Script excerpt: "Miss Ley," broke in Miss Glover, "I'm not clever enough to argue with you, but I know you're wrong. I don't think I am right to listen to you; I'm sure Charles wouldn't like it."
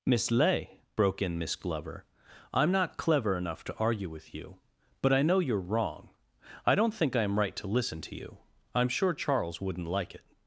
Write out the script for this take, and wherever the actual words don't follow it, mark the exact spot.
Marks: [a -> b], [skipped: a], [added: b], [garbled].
"Miss Ley," broke in Miss Glover, "I'm not clever enough to argue with you, but I know you're wrong. I don't think I am right to listen to you; I'm sure Charles wouldn't like it."